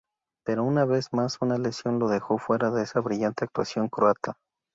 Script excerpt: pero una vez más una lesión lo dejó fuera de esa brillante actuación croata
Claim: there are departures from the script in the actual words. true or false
false